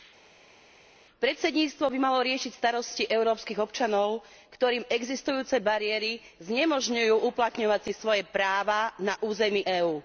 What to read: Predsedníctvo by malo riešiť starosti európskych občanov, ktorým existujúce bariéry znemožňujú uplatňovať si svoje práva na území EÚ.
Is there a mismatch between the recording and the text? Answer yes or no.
no